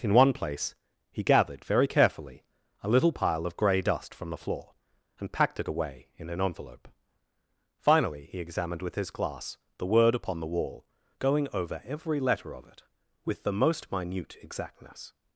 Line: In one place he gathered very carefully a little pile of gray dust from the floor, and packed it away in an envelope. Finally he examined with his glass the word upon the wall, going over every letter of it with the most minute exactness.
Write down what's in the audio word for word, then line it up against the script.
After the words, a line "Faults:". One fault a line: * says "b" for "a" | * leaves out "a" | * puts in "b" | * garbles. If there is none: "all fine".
In one place he gathered very carefully a little pile of gray dust from the floor, and packed it away in an envelope. Finally he examined with his glass the word upon the wall, going over every letter of it with the most minute exactness.
Faults:
all fine